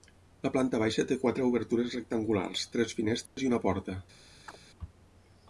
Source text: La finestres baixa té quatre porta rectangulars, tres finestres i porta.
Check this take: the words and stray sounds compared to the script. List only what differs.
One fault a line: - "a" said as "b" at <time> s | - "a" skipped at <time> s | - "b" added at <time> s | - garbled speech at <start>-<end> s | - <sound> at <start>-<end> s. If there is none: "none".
- "finestres" said as "planta" at 0.5 s
- "porta" said as "obertures" at 1.5 s
- dropout at 3.3-3.4 s
- "una" added at 3.5 s
- chirp at 4.5-4.6 s